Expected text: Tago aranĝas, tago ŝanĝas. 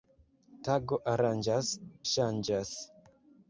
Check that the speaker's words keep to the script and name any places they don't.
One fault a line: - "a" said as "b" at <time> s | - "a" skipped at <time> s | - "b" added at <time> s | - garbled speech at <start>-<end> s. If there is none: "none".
- "tago" skipped at 1.7 s